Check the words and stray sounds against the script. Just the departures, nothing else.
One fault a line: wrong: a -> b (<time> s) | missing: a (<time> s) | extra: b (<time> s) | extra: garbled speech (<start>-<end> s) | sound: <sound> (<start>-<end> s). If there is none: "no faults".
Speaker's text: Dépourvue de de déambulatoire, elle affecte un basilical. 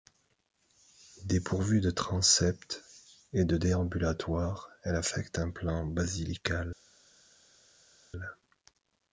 extra: transept et (1.9 s)
extra: plan (5.5 s)